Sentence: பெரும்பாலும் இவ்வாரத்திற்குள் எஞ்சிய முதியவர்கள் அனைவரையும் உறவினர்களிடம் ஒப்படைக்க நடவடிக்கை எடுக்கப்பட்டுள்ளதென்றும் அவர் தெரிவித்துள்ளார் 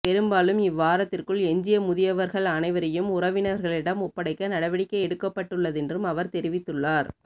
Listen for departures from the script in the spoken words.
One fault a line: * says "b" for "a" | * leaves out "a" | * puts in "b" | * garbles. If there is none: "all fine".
all fine